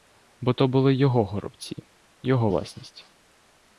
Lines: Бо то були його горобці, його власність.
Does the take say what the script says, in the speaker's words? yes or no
yes